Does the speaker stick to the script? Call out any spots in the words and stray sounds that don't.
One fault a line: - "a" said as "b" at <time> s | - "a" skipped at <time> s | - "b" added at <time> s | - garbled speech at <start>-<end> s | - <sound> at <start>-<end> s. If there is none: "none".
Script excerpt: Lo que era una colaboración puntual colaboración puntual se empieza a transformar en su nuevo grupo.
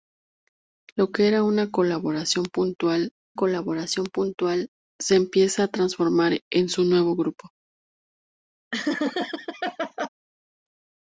- laugh at 8.7-10.1 s